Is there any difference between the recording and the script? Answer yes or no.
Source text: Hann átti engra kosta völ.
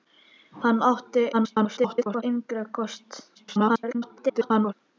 yes